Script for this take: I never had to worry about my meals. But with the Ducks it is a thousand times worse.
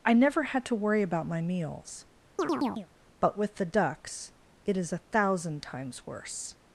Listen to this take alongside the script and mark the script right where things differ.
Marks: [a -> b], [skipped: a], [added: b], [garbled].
I never had to worry about my meals. But with the Ducks it is a thousand times worse.